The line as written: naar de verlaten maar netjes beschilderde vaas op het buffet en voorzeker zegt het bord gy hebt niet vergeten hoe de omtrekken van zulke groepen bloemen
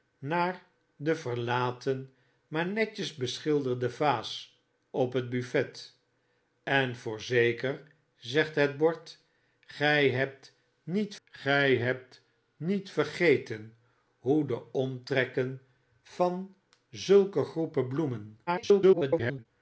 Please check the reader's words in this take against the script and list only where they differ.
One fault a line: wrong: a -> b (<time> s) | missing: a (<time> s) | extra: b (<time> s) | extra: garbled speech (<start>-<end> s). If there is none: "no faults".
extra: gy hebt niet (11.2 s)
extra: garbled speech (18.5-19.5 s)